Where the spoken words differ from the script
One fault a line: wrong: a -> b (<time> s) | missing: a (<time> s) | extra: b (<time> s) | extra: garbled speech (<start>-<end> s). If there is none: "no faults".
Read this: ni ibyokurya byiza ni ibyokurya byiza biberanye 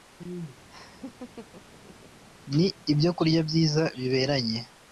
missing: ni ibyokurya byiza (3.8 s)